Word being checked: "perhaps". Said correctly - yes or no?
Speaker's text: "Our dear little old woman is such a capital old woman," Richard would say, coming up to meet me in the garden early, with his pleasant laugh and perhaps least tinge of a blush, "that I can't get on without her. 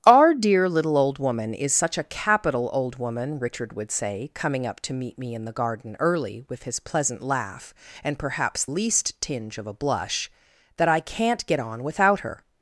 yes